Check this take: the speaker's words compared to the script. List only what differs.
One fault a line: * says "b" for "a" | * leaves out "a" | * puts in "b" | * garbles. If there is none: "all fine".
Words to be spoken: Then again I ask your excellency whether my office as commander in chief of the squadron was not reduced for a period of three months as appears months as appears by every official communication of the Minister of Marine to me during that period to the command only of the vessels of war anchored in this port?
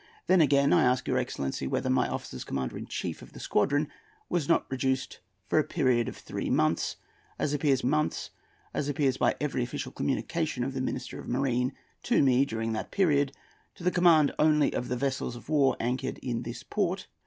all fine